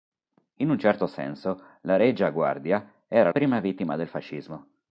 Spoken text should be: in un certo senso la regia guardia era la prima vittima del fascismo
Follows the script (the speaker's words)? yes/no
no